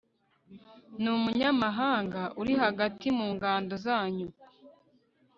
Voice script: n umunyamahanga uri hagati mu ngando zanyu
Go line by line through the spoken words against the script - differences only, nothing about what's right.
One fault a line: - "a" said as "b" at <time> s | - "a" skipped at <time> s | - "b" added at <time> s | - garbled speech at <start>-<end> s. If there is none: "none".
none